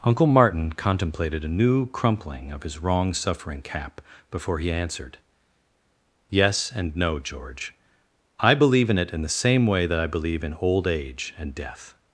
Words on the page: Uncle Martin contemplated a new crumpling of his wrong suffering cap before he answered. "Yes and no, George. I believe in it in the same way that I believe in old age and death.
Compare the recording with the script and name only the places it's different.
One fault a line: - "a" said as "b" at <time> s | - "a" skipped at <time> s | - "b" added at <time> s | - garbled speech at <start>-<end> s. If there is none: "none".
none